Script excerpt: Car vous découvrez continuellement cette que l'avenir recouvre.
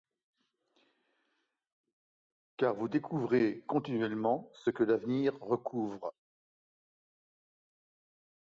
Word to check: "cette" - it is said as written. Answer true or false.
false